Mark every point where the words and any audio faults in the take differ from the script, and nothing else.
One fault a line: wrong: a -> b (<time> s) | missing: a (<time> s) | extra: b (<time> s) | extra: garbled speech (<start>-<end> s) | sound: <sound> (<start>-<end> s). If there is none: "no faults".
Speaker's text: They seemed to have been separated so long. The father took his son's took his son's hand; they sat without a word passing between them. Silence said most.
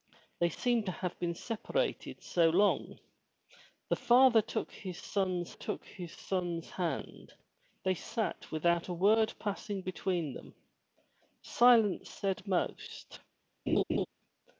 sound: laugh (13.7-14.1 s)